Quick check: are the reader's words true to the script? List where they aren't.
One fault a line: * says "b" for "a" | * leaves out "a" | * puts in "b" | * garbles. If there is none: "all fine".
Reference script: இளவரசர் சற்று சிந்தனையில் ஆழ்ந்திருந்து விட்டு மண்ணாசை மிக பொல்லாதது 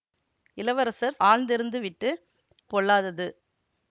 * leaves out "சற்று சிந்தனையில்"
* leaves out "மண்ணாசை மிக"